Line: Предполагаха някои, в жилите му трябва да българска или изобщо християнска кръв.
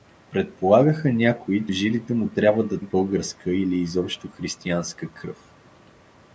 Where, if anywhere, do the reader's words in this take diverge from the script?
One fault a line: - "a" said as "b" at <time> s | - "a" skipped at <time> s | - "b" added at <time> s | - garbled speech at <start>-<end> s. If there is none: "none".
none